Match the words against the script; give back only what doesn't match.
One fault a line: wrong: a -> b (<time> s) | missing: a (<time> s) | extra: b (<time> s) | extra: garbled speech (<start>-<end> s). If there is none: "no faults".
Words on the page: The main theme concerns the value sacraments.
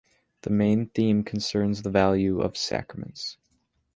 extra: of (2.4 s)